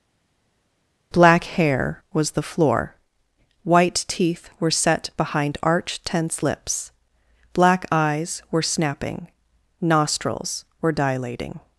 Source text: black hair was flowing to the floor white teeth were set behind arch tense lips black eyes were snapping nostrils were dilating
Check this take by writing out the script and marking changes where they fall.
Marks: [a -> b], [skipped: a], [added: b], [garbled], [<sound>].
black hair was [skipped: flowing to] the floor white teeth were set behind arch tense lips black eyes were snapping nostrils were dilating